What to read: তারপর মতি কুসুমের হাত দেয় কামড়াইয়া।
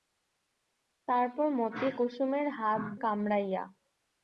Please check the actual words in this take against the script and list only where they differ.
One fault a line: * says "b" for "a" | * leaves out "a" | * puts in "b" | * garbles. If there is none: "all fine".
* leaves out "দেয়"